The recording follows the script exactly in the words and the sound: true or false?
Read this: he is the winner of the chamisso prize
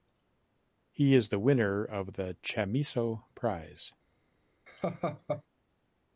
false